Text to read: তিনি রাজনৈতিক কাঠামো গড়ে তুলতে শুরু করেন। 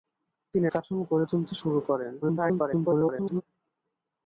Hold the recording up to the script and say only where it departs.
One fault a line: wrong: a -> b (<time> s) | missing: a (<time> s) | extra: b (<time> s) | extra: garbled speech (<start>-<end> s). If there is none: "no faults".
missing: রাজনৈতিক (0.7 s)
extra: garbled speech (2.2-3.4 s)